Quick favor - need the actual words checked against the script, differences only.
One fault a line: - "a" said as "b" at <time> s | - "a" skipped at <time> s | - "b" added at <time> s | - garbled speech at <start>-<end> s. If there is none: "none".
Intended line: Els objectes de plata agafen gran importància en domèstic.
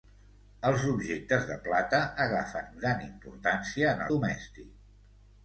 none